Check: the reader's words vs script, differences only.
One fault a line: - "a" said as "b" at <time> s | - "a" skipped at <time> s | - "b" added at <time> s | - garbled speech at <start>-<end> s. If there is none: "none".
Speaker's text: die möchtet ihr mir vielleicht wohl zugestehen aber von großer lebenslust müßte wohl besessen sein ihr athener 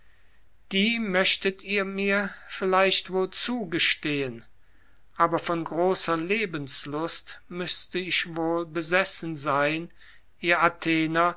- "ich" added at 8.0 s